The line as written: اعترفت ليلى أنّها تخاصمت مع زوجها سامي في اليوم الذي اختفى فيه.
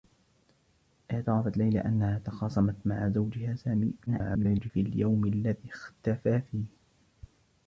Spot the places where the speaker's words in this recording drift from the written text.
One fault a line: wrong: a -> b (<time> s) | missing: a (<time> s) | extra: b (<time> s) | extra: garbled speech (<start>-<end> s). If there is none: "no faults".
extra: garbled speech (4.1-4.7 s)